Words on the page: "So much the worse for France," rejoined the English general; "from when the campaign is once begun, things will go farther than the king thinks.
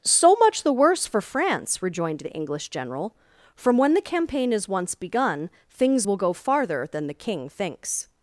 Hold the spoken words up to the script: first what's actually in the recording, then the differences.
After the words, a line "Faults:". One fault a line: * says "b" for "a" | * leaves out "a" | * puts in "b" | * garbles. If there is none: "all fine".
"So much the worse for France," rejoined the English general; "from when the campaign is once begun, things will go farther than the king thinks.
Faults:
all fine